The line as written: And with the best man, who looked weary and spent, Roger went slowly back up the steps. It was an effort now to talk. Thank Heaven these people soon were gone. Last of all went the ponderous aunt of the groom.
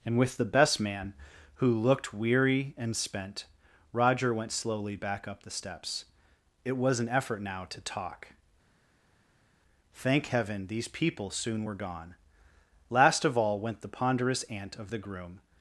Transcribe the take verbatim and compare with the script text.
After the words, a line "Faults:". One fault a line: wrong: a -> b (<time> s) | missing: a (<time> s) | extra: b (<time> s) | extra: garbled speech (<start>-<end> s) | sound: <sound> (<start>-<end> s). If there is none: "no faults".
And with the best man, who looked weary and spent, Roger went slowly back up the steps. It was an effort now to talk. Thank Heaven these people soon were gone. Last of all went the ponderous aunt of the groom.
Faults:
no faults